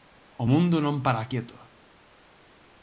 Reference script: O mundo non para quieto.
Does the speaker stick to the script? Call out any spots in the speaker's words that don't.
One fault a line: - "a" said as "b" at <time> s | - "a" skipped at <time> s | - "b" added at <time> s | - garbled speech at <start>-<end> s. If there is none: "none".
none